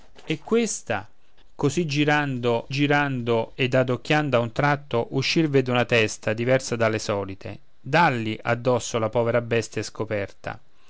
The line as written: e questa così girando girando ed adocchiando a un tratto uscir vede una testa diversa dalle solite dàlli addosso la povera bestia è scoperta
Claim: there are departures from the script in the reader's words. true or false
false